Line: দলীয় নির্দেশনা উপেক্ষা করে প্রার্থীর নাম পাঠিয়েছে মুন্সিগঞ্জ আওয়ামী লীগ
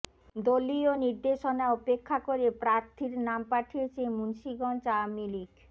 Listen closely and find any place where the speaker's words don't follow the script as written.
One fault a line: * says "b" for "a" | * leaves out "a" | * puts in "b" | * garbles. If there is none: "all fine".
all fine